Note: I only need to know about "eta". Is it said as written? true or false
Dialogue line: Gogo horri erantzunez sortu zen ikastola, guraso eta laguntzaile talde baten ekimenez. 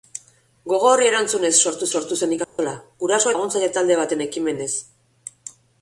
false